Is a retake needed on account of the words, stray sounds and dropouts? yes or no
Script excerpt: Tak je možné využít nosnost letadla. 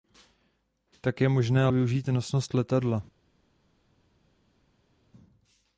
no